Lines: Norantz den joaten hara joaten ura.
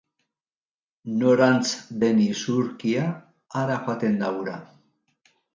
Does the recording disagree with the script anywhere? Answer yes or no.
yes